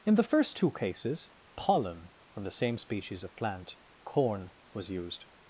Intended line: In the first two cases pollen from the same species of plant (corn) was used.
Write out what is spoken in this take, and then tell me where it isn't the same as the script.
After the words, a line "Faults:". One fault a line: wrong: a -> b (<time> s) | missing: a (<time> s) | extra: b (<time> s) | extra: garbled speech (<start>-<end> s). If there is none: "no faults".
In the first two cases pollen from the same species of plant (corn) was used.
Faults:
no faults